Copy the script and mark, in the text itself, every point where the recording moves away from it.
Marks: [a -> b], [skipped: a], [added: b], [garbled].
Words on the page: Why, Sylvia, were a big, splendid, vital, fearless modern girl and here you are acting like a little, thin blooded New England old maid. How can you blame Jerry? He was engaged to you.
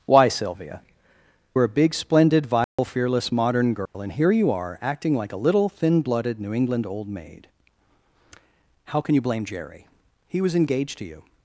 Why, Sylvia, were a big, splendid, vital, fearless modern girl and here you are acting like a little, thin blooded New England old maid. How can you blame Jerry? He was engaged to you.